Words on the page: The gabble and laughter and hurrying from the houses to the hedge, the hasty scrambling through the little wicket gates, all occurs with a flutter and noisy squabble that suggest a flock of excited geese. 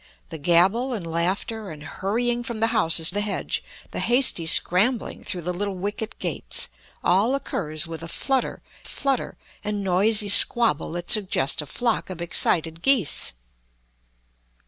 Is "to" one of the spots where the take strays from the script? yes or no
yes